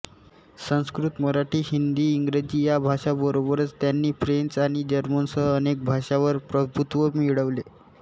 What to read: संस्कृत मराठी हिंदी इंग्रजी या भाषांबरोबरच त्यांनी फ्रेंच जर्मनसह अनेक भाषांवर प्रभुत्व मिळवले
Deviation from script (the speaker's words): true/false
true